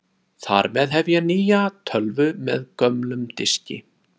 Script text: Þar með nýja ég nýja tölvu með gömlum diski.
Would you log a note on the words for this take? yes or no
yes